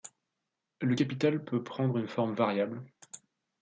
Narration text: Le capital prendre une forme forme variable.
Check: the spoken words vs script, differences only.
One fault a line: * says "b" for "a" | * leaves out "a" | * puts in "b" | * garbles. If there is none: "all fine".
* puts in "peut"
* leaves out "forme"